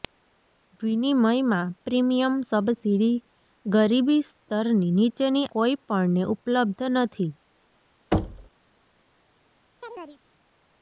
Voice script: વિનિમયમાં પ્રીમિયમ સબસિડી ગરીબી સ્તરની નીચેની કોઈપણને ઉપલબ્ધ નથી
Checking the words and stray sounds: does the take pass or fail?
fail